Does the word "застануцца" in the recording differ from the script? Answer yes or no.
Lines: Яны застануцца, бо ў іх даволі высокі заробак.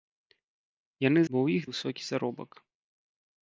yes